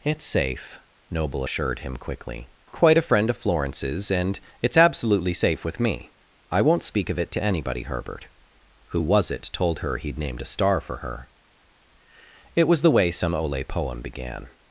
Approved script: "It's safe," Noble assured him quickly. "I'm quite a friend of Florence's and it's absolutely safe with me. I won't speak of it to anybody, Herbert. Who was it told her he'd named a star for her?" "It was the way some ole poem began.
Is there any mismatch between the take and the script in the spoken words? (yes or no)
yes